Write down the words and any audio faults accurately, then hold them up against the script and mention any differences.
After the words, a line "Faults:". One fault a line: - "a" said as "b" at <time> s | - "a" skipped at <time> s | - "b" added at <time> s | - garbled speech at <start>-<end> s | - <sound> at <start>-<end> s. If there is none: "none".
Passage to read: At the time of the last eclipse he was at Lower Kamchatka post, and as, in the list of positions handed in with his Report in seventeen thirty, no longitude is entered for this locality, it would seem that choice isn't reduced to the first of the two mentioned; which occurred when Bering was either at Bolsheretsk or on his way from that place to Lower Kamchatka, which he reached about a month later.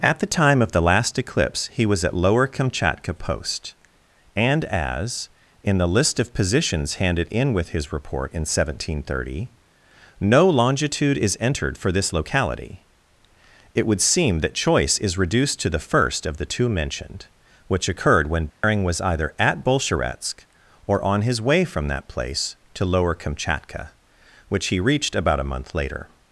At the time of the last eclipse he was at Lower Kamchatka post, and as, in the list of positions handed in with his Report in seventeen thirty, no longitude is entered for this locality, it would seem that choice is reduced to the first of the two mentioned; which occurred when Bering was either at Bolsheretsk or on his way from that place to Lower Kamchatka, which he reached about a month later.
Faults:
- "isn't" said as "is" at 15.0 s
- dropout at 18.5-18.6 s